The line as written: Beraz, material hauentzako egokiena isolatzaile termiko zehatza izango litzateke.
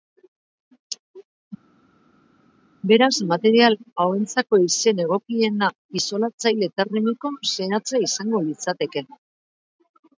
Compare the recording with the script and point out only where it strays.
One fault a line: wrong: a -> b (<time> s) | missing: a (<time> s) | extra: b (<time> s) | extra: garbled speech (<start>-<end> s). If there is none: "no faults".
extra: izen (4.7 s)